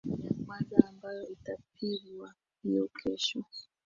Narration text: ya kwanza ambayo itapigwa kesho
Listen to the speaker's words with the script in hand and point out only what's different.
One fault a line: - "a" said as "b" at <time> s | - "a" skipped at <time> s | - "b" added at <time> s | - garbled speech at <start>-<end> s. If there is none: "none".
- "hiyo" added at 2.6 s